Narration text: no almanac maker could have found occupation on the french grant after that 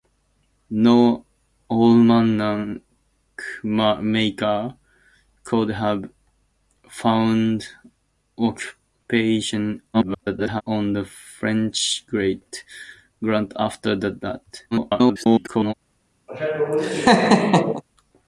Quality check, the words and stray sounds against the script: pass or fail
fail